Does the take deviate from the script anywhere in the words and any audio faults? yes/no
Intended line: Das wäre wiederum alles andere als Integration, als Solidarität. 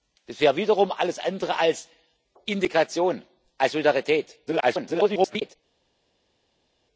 yes